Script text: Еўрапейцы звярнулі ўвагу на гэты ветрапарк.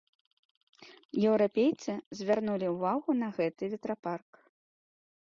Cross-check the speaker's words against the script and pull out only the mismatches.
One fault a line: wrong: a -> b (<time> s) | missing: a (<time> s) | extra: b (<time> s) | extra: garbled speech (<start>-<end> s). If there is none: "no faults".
no faults